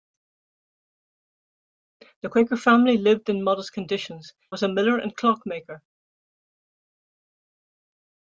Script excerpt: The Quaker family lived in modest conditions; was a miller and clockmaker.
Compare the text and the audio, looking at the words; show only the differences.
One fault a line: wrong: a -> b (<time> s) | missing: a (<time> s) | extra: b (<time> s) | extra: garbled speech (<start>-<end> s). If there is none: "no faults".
no faults